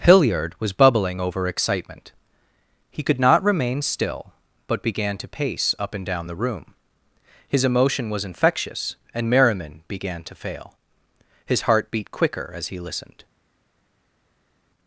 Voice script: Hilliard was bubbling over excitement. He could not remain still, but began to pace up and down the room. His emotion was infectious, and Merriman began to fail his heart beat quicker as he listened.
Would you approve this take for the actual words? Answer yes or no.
yes